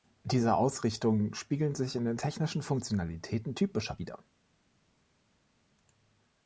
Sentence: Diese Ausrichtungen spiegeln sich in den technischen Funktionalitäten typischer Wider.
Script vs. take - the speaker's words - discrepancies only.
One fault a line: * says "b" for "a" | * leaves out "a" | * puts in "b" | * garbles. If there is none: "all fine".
all fine